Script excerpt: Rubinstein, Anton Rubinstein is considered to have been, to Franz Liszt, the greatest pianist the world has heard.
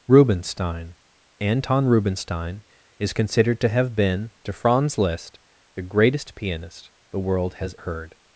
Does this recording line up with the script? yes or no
yes